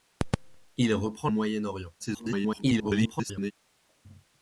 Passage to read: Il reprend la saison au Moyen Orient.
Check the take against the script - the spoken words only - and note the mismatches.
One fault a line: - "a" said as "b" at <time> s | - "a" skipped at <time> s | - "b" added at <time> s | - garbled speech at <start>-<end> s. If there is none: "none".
- "la saison" skipped at 1.3 s
- garbled speech at 2.0-3.5 s